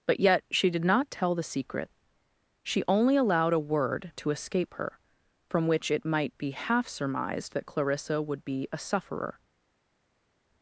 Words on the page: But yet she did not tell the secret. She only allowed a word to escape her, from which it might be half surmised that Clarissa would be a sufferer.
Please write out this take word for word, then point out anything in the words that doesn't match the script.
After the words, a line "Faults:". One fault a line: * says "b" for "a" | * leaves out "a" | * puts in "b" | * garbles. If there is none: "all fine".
But yet she did not tell the secret. She only allowed a word to escape her, from which it might be half surmised that Clarissa would be a sufferer.
Faults:
all fine